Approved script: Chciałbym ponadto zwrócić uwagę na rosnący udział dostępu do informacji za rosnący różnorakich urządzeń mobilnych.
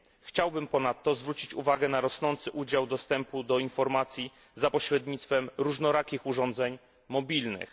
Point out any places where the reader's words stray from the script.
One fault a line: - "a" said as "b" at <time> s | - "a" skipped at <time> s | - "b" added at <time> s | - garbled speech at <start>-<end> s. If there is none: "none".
- "rosnący" said as "pośrednictwem" at 4.7 s